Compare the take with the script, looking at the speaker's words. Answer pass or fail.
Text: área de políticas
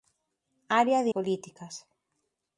pass